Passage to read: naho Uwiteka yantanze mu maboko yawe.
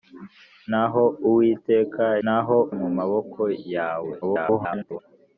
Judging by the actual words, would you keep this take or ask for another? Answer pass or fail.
fail